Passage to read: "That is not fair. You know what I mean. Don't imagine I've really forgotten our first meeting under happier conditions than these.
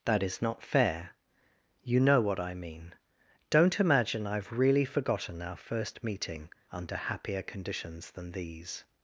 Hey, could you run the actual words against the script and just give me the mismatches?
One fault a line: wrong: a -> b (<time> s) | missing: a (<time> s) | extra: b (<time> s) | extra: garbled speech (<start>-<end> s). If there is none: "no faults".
no faults